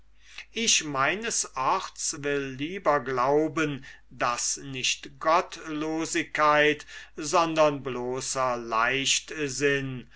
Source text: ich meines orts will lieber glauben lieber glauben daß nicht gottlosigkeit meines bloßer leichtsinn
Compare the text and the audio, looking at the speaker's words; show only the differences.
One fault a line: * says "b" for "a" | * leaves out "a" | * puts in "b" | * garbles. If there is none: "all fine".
* leaves out "lieber glauben"
* says "sondern" for "meines"